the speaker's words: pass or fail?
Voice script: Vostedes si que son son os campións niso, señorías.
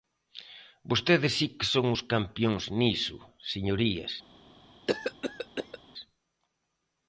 fail